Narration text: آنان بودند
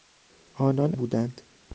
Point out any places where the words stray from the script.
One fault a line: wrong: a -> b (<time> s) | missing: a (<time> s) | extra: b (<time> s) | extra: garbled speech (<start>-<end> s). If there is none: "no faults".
no faults